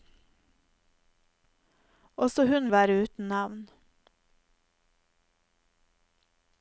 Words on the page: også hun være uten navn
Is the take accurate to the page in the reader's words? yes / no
yes